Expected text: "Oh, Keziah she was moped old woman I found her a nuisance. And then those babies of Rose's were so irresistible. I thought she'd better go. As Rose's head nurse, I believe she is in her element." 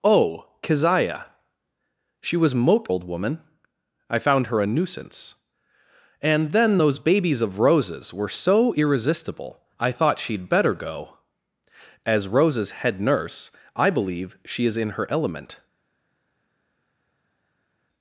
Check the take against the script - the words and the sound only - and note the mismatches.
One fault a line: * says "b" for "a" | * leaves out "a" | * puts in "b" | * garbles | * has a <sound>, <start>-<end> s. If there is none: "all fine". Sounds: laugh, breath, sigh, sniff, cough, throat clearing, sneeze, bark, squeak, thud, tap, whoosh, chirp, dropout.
all fine